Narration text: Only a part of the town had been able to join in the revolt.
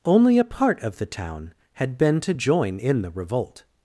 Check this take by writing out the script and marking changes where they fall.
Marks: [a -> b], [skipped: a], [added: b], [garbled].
Only a part of the town had been [skipped: able] to join in the revolt.